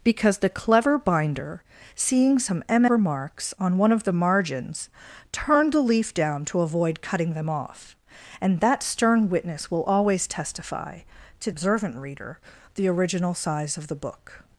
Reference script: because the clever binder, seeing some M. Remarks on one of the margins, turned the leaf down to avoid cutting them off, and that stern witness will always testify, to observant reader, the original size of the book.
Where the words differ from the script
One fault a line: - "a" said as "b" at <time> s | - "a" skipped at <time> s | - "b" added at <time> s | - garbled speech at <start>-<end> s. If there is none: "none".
none